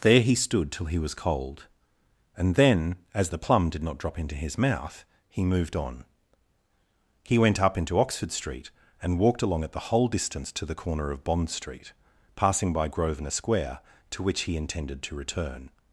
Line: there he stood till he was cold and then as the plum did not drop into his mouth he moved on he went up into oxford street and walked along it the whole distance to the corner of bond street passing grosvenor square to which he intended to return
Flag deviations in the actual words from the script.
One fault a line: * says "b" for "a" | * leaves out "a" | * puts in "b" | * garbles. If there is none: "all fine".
* puts in "by"